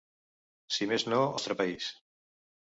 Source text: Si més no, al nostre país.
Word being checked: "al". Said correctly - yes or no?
no